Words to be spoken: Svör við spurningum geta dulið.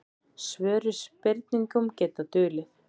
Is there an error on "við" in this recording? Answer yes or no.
no